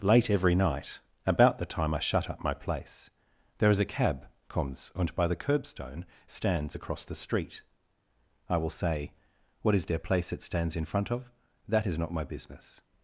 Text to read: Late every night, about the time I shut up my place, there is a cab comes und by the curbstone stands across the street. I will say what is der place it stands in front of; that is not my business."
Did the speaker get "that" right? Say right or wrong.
right